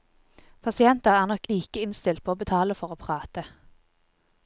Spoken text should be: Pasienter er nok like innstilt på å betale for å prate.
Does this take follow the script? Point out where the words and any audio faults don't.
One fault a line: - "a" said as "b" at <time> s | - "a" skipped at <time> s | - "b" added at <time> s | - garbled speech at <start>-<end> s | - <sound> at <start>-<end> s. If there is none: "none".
none